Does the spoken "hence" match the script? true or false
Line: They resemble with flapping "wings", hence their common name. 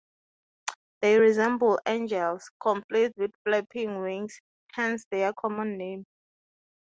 true